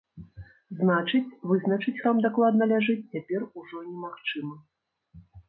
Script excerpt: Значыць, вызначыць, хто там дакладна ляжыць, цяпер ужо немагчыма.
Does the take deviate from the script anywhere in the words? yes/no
yes